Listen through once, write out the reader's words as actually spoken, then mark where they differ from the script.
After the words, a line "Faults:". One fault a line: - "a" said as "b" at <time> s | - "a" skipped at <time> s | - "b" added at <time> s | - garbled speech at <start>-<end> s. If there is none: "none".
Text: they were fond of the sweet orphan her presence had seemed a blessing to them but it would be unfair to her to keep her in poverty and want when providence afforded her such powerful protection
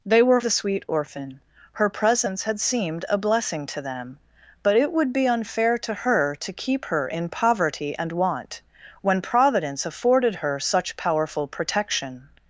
they were the sweet orphan her presence had seemed a blessing to them but it would be unfair to her to keep her in poverty and want when providence afforded her such powerful protection
Faults:
- "fond of" skipped at 0.4 s